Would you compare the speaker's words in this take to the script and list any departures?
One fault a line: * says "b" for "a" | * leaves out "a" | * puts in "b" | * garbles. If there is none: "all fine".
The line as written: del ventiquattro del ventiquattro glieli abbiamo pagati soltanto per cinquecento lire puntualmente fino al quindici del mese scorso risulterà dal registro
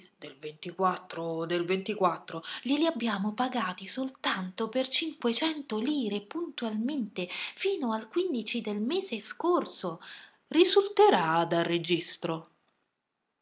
all fine